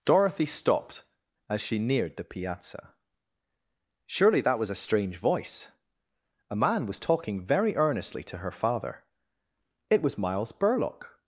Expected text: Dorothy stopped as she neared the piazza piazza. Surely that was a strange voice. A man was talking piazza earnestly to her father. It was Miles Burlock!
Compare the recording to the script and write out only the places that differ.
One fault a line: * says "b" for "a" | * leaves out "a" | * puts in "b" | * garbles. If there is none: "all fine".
* leaves out "piazza"
* says "very" for "piazza"